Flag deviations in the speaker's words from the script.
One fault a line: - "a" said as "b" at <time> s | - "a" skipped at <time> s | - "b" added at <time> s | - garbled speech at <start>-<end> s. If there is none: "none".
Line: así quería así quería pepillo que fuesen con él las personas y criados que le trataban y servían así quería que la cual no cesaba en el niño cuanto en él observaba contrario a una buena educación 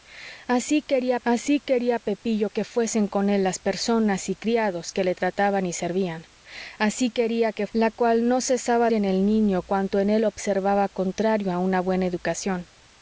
none